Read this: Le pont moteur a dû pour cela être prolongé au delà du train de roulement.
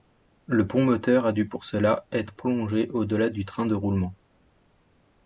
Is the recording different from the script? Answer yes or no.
no